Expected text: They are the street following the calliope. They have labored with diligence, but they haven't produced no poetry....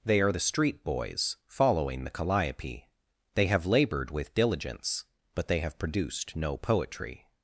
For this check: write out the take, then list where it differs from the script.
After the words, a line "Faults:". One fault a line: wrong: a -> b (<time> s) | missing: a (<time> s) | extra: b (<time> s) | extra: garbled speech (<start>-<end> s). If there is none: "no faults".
They are the street boys following the calliope. They have labored with diligence, but they have produced no poetry....
Faults:
extra: boys (0.8 s)
wrong: haven't -> have (5.6 s)